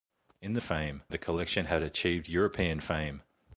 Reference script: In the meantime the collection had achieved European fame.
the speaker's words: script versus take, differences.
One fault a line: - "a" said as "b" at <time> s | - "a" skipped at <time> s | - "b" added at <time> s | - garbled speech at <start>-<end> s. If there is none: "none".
- "meantime" said as "fame" at 0.6 s